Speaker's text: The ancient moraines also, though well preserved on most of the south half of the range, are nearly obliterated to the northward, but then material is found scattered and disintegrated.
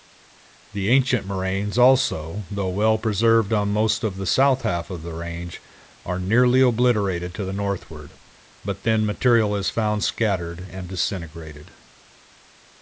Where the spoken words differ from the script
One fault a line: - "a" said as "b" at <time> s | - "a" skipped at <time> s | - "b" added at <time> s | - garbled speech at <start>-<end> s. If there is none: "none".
none